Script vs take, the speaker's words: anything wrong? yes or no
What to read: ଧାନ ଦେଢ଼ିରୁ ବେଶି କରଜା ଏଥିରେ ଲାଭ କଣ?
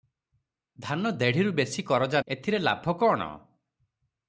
no